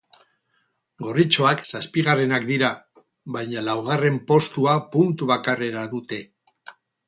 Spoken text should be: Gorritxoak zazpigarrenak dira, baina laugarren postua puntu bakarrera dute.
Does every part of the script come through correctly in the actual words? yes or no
yes